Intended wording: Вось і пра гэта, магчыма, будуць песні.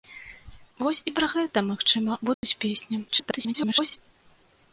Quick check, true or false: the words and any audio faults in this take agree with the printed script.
false